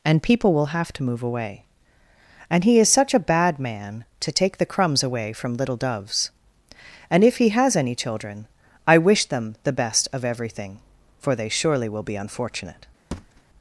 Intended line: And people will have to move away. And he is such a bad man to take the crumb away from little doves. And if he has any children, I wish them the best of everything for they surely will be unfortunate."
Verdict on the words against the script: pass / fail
fail